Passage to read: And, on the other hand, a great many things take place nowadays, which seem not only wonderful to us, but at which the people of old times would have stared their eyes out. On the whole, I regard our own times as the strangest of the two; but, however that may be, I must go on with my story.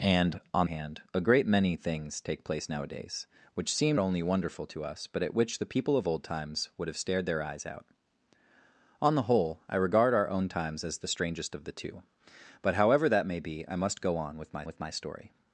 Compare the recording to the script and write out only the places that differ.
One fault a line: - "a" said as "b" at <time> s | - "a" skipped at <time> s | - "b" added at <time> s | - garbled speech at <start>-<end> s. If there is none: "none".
- "the other" skipped at 0.7 s
- "not" skipped at 4.0 s
- "with my" added at 14.6 s